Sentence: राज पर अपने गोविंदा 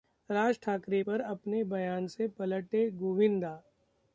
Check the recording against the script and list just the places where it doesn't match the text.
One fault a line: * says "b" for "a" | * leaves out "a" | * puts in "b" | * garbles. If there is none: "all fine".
* puts in "ठाकरे"
* puts in "बयान से पलटे"